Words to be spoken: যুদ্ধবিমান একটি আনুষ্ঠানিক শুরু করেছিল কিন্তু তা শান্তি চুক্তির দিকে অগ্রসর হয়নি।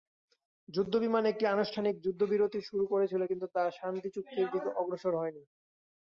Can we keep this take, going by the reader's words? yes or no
no